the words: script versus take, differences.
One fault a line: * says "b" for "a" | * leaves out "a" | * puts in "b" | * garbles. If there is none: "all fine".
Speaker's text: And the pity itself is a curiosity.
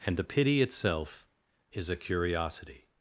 all fine